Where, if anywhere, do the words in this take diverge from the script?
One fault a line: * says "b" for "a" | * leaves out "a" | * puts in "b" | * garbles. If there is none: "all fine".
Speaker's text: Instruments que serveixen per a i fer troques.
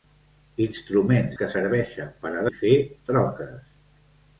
all fine